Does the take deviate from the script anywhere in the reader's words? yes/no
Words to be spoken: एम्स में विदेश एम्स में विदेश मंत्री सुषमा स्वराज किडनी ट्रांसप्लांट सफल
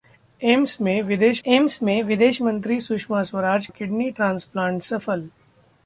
no